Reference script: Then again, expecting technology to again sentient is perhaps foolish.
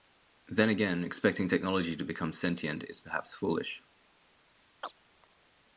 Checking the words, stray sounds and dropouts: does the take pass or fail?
fail